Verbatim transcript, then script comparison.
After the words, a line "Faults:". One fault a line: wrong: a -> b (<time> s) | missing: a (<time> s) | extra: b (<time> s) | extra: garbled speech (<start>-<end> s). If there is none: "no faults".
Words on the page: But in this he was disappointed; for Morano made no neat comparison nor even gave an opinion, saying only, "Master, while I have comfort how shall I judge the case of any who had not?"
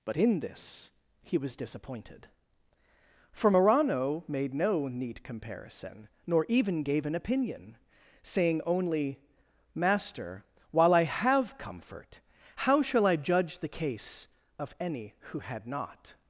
But in this he was disappointed; for Morano made no neat comparison nor even gave an opinion, saying only, "Master, while I have comfort how shall I judge the case of any who had not?"
Faults:
no faults